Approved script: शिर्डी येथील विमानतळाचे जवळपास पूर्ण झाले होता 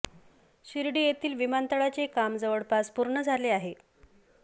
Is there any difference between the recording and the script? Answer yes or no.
yes